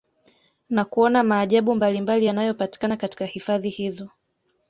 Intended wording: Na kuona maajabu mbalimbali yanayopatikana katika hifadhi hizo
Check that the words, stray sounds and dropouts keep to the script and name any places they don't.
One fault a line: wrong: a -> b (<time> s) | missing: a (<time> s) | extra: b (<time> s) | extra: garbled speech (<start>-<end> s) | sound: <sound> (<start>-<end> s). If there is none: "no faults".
no faults